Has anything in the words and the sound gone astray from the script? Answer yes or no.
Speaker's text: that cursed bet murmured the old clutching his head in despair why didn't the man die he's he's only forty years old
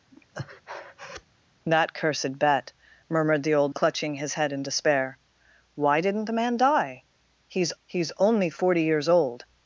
yes